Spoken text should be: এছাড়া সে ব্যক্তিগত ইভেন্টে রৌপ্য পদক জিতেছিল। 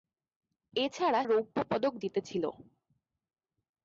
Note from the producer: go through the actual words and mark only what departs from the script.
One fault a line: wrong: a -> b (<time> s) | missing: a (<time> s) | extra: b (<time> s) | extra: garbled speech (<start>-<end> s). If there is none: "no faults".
missing: সে ব্যক্তিগত ইভেন্টে (1.2 s)